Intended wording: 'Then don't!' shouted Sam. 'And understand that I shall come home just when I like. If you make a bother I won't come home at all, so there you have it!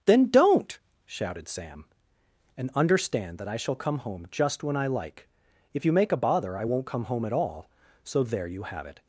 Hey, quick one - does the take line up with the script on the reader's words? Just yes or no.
yes